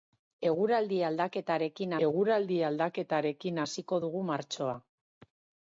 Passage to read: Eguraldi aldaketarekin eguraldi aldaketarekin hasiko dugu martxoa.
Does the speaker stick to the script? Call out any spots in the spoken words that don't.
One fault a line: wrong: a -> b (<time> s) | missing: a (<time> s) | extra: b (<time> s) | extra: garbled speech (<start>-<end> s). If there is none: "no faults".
no faults